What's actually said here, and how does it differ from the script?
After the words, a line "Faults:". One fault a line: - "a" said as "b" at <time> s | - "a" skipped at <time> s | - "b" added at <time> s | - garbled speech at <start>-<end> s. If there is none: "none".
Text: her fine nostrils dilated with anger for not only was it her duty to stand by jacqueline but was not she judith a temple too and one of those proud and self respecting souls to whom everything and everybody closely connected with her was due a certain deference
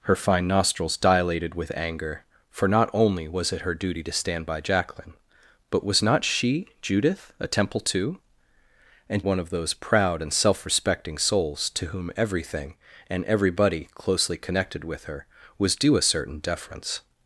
her fine nostrils dilated with anger for not only was it her duty to stand by jacqueline but was not she judith a temple too and one of those proud and self respecting souls to whom everything and everybody closely connected with her was due a certain deference
Faults:
none